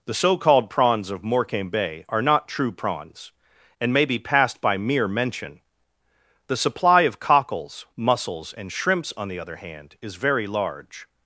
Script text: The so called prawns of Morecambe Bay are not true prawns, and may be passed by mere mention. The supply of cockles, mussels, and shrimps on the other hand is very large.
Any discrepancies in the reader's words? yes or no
no